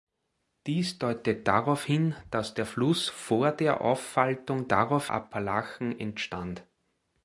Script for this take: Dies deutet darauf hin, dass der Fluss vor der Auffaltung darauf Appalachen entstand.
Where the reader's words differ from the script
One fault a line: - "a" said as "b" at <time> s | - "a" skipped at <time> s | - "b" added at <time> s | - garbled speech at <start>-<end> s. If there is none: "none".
none